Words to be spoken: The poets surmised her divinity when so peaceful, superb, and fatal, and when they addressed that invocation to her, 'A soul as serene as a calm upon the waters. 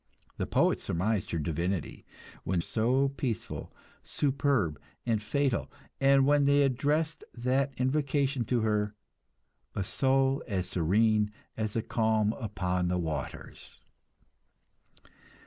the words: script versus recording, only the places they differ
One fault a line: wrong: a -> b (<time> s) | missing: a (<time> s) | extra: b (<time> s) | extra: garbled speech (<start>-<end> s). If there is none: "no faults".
no faults